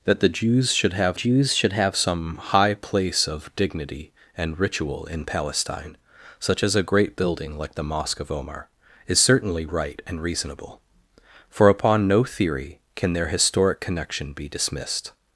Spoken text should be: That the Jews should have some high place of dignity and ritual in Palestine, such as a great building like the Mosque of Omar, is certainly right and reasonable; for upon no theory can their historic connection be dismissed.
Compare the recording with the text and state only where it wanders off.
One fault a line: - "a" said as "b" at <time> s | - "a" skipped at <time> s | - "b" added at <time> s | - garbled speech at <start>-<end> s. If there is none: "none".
- "Jews should have" added at 1.1 s